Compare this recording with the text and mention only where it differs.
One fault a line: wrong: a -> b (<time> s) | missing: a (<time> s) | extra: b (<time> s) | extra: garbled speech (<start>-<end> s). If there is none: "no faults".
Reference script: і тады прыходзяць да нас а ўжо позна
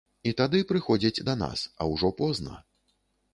no faults